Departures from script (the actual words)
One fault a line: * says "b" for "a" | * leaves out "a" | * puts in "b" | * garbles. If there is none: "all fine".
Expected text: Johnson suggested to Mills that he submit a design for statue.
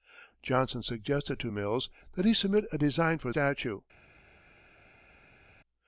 all fine